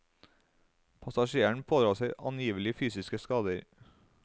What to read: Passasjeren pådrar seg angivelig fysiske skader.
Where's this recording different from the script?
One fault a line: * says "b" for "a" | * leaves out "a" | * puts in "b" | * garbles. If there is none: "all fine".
all fine